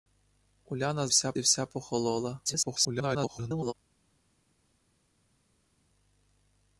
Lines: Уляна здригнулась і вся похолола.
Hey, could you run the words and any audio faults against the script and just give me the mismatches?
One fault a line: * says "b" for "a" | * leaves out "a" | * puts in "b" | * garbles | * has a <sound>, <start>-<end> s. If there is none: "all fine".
* says "вся" for "здригнулась"
* garbles